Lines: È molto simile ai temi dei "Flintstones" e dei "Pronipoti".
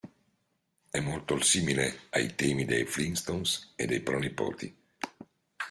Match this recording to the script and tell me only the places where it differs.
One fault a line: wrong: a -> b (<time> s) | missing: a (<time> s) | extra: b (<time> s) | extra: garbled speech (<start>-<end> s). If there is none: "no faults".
no faults